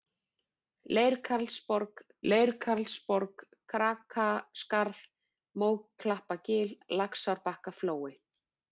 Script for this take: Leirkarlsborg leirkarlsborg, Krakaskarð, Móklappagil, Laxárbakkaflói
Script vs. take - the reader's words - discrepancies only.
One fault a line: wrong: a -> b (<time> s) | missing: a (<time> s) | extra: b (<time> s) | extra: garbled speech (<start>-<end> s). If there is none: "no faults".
no faults